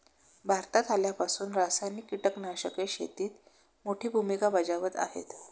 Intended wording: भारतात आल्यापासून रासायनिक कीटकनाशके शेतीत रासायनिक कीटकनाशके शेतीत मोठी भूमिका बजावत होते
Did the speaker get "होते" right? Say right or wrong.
wrong